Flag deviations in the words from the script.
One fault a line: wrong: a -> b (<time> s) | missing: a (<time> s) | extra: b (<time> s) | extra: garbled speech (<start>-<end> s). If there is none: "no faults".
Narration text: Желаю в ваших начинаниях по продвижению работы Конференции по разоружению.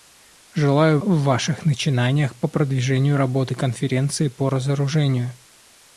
no faults